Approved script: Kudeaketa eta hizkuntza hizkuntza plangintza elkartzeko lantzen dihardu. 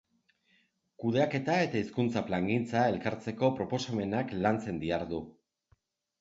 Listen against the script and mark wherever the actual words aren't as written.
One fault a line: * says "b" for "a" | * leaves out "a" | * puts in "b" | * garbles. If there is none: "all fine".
* leaves out "hizkuntza"
* puts in "proposamenak"